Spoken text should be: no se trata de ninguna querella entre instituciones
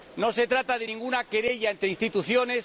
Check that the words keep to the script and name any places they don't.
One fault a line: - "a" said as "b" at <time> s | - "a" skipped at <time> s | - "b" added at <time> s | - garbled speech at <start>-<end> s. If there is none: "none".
none